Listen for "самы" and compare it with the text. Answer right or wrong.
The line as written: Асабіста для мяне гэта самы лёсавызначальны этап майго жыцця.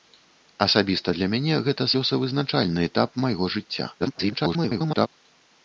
wrong